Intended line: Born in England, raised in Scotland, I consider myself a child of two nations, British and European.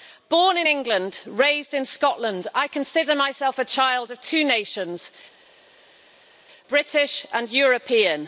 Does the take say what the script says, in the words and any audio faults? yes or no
yes